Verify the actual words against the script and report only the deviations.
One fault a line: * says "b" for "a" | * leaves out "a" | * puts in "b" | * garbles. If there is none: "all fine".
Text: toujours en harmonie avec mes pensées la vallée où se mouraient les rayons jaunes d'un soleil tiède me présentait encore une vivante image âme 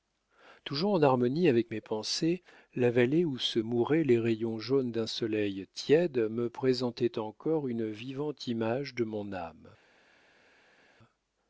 * puts in "de mon"